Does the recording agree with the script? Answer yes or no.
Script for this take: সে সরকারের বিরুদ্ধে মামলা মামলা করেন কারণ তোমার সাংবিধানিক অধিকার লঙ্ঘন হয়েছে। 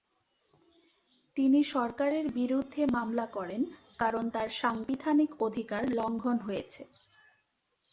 no